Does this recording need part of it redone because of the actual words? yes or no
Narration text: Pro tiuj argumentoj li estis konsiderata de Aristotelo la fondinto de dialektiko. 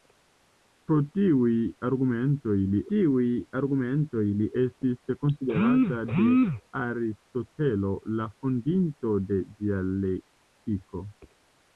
yes